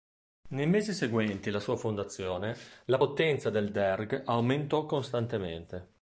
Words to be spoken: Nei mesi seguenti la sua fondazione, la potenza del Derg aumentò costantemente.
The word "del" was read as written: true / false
true